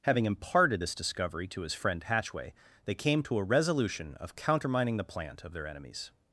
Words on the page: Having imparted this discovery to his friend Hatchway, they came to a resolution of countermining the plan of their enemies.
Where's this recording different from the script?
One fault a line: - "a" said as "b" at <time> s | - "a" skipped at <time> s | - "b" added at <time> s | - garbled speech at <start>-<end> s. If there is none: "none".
- "plan" said as "plant" at 5.0 s